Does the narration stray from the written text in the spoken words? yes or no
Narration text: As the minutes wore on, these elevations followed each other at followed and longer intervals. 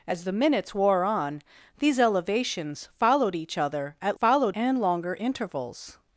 no